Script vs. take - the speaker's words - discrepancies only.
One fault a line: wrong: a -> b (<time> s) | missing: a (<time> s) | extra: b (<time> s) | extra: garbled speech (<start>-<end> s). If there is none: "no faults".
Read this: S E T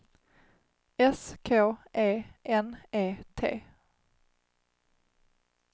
extra: K E N (1.4 s)